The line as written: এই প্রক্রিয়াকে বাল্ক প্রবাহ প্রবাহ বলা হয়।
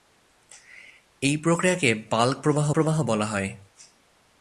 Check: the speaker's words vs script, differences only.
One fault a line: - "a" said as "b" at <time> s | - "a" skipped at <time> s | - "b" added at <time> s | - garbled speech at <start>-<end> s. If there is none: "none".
none